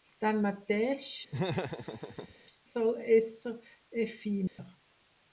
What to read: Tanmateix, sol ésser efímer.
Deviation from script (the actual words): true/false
false